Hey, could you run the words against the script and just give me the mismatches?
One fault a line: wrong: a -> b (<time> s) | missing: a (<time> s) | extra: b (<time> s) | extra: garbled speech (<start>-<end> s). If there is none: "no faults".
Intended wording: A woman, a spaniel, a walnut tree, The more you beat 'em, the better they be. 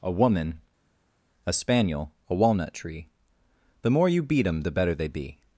no faults